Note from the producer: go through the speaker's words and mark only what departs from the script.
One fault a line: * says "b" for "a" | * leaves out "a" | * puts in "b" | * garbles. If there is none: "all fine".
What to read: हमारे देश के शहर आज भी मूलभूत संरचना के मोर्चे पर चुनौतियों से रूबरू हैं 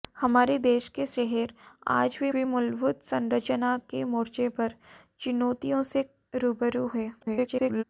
* puts in "भी"
* garbles